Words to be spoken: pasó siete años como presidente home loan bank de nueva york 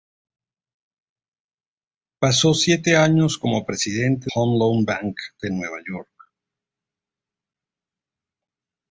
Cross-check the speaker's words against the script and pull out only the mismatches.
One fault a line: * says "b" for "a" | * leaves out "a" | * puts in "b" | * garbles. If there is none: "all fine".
all fine